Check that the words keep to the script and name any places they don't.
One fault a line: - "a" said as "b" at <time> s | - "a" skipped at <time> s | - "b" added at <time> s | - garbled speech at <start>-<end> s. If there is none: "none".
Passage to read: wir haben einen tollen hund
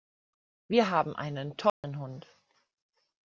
none